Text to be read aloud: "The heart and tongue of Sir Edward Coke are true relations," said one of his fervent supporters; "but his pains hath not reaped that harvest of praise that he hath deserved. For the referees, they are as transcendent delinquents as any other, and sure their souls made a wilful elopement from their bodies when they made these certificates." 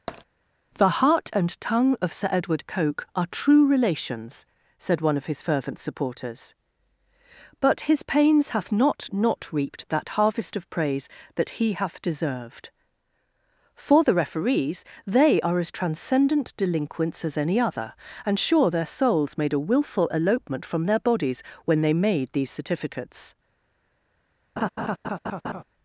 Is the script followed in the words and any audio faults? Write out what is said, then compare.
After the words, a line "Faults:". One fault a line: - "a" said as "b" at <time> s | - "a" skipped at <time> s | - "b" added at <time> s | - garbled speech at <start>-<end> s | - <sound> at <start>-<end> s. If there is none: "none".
"The heart and tongue of Sir Edward Coke are true relations," said one of his fervent supporters; "but his pains hath not not reaped that harvest of praise that he hath deserved. For the referees, they are as transcendent delinquents as any other, and sure their souls made a wilful elopement from their bodies when they made these certificates."
Faults:
- tap at 0.1-0.2 s
- "not" added at 9.1 s
- laugh at 24.6-25.6 s